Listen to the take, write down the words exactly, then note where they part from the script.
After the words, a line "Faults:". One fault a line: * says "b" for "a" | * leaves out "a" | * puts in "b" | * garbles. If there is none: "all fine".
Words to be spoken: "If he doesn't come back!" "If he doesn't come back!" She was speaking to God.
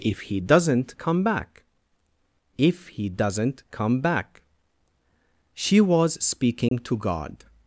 "If he doesn't come back!" "If he doesn't come back!" She was speaking to God.
Faults:
all fine